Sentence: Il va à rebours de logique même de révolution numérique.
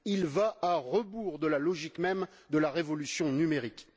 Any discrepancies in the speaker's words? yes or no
yes